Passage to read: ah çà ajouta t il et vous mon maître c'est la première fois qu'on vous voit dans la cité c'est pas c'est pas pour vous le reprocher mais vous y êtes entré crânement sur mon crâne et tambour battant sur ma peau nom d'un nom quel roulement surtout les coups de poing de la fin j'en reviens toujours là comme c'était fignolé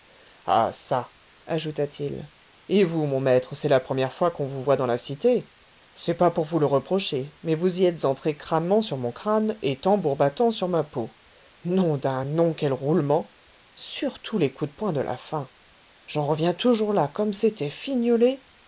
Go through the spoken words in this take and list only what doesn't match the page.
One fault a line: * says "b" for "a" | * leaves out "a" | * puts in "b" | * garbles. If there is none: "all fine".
* leaves out "c'est pas"